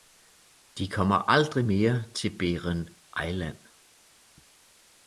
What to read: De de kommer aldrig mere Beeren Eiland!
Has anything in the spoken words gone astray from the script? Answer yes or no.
yes